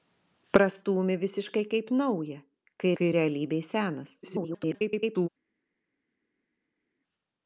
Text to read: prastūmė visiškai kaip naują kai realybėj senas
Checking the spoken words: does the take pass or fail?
fail